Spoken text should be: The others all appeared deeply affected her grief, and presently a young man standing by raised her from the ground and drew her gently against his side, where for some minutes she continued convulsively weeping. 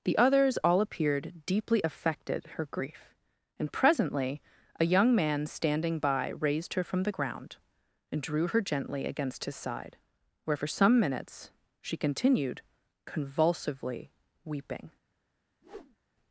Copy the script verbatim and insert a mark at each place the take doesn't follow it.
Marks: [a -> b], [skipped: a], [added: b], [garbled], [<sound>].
The others all appeared deeply affected her grief, and presently a young man standing by raised her from the ground and drew her gently against his side, where for some minutes she continued convulsively weeping. [whoosh]